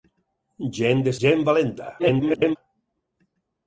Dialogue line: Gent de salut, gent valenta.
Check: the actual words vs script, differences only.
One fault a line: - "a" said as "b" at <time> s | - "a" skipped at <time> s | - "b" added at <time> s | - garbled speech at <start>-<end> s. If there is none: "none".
- "salut" skipped at 1.1 s
- garbled speech at 2.0-2.6 s